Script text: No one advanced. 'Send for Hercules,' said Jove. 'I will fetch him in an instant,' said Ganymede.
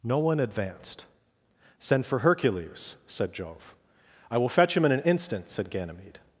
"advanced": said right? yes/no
yes